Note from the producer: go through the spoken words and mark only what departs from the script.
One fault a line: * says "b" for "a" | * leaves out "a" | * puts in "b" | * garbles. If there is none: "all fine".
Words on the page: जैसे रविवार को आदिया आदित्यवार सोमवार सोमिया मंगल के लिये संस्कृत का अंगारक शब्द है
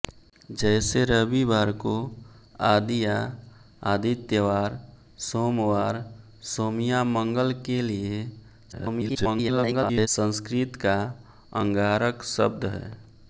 * garbles